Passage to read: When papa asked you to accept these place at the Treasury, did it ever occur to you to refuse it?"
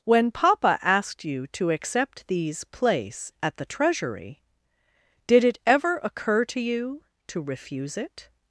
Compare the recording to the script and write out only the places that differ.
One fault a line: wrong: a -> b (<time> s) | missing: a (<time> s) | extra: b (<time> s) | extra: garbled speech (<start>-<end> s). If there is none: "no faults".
no faults